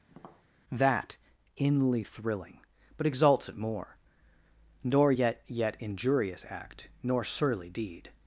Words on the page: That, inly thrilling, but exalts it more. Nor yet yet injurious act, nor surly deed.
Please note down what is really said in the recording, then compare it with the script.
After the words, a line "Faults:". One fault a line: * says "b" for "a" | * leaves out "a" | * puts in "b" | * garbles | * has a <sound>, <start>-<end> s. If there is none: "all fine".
That, inly thrilling, but exalts it more. Nor yet yet injurious act, nor surly deed.
Faults:
* has a tap, 0.1-0.5 s